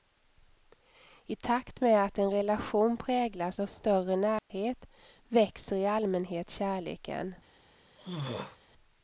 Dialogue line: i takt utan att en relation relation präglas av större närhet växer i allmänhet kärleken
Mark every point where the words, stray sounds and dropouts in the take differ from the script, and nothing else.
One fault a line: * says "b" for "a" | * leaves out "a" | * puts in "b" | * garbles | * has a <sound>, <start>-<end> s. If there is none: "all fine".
* says "med" for "utan"
* leaves out "relation"
* has a dropout, 4.4-4.5 s
* has a throat clearing, 8.0-8.6 s